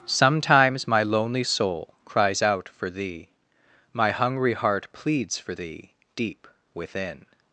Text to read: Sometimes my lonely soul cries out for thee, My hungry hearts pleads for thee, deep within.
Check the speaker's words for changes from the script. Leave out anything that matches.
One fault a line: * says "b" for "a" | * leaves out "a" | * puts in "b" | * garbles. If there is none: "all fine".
* says "heart" for "hearts"